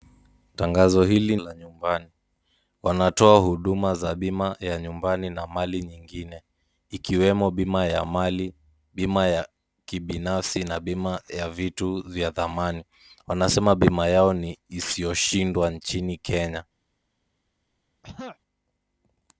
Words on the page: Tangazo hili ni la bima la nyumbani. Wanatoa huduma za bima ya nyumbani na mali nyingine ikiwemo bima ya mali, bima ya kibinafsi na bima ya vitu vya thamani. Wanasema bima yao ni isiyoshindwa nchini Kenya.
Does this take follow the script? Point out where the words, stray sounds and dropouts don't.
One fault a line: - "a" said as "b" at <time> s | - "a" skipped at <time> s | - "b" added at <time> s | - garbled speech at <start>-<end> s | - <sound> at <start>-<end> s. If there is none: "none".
- "ni la bima" skipped at 1.4 s
- throat clearing at 18.0-18.4 s